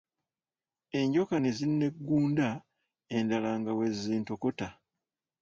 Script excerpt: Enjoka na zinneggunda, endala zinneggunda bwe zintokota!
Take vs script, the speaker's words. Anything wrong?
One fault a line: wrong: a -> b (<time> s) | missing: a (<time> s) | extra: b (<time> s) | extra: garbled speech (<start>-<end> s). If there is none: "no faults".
wrong: na -> ne (1.4 s)
wrong: zinneggunda -> nga (3.6 s)